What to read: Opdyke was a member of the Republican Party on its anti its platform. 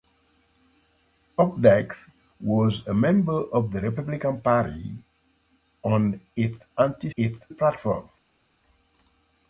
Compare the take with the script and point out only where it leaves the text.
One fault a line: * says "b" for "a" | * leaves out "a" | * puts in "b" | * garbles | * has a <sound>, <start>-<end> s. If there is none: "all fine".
all fine